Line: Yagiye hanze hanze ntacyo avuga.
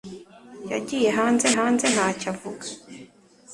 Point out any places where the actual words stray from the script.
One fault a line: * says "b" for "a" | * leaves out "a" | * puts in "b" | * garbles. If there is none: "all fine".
all fine